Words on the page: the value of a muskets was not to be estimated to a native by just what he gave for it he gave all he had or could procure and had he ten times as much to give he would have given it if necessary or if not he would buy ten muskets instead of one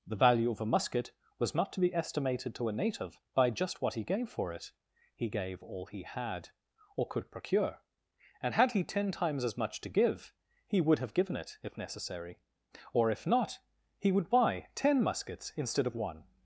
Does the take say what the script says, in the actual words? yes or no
no